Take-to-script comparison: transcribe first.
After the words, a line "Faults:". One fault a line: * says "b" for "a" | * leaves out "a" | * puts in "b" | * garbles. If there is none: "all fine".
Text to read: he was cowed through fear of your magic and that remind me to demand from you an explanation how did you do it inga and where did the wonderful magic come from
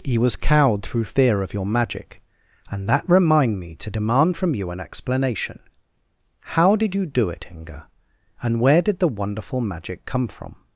he was cowed through fear of your magic and that remind me to demand from you an explanation how did you do it inga and where did the wonderful magic come from
Faults:
all fine